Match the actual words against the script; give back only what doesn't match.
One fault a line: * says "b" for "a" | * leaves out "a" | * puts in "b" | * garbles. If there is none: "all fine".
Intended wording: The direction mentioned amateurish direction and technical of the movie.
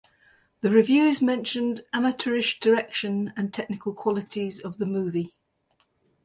* says "reviews" for "direction"
* puts in "qualities"